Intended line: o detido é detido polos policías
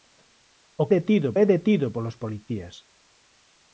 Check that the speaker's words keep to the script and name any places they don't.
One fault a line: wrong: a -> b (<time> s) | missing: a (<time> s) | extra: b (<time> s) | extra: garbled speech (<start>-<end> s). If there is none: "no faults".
no faults